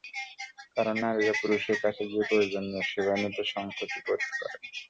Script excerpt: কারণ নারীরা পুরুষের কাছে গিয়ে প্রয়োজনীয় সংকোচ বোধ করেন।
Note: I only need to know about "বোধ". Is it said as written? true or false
true